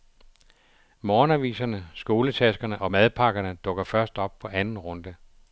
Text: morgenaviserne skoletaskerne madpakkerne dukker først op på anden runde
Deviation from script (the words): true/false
true